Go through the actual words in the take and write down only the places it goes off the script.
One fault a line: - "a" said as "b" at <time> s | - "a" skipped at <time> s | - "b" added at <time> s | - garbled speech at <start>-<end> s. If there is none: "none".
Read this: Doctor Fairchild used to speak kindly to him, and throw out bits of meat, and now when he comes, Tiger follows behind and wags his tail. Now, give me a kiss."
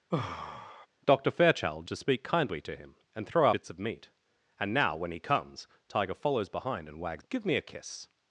- "used" skipped at 1.9 s
- "out" skipped at 3.5 s
- "his tail Now" skipped at 7.2 s